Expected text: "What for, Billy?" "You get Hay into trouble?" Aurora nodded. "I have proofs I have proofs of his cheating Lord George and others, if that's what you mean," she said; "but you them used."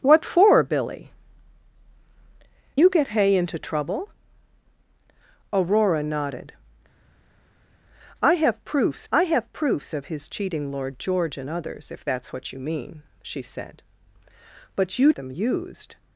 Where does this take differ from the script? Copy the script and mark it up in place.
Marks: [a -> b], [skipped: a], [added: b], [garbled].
"What for, Billy?" "You get Hay into trouble?" Aurora nodded. "I have proofs I have proofs of his cheating Lord George and others, if that's what you mean," she said; "but you them used."